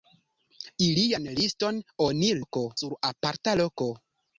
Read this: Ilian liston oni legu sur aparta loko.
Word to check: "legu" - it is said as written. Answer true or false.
false